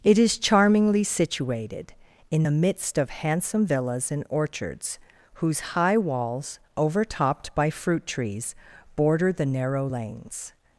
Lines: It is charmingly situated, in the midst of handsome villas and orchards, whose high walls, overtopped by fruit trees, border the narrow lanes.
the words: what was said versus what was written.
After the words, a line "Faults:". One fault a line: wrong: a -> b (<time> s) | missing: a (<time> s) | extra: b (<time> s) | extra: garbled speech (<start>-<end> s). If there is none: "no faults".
It is charmingly situated, in the midst of handsome villas and orchards, whose high walls, overtopped by fruit trees, border the narrow lanes.
Faults:
no faults